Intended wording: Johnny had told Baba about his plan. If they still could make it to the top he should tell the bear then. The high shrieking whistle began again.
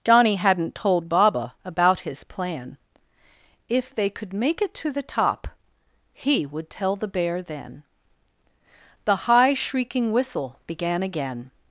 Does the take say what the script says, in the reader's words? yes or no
no